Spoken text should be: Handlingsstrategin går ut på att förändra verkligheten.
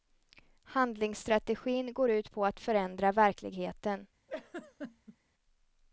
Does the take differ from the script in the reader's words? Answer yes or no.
no